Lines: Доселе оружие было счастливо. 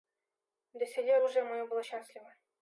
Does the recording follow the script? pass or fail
fail